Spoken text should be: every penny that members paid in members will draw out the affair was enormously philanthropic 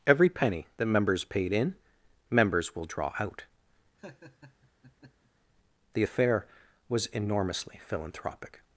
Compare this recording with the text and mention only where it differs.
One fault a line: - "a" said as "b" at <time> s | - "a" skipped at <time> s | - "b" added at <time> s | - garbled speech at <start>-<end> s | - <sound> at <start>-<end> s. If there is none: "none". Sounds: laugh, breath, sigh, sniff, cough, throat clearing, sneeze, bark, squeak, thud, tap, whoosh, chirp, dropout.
- laugh at 4.0-5.3 s